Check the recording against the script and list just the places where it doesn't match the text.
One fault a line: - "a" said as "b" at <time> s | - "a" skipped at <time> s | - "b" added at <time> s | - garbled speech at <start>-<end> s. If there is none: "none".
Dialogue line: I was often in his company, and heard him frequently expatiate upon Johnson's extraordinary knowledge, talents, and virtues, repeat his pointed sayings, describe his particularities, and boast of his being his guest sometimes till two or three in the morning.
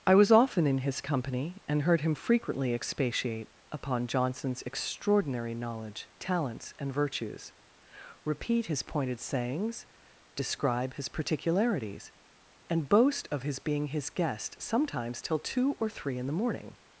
none